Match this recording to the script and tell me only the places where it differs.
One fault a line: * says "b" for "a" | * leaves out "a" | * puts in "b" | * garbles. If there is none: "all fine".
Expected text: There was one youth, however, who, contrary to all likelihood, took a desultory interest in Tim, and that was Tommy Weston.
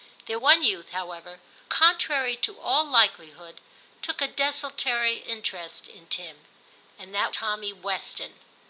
* leaves out "was"
* leaves out "who"
* leaves out "was"